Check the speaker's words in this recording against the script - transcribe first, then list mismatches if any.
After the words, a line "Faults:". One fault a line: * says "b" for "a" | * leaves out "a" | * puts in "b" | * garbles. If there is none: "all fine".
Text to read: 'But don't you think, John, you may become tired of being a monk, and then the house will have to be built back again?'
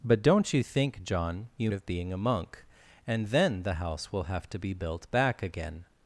'But don't you think, John, you of being a monk, and then the house will have to be built back again?'
Faults:
* leaves out "may become tired"